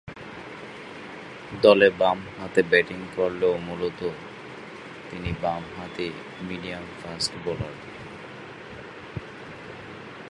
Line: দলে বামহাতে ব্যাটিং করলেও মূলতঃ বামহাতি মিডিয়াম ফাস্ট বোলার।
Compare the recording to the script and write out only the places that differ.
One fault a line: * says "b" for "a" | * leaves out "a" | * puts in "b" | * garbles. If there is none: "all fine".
* puts in "তিনি"